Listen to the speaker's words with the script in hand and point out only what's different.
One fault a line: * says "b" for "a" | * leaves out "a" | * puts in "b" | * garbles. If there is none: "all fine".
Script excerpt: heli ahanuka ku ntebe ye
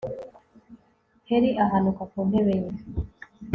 all fine